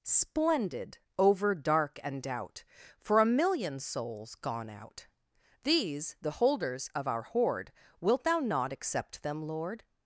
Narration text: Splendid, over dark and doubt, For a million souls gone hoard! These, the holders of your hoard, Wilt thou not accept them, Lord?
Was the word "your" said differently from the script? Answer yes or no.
yes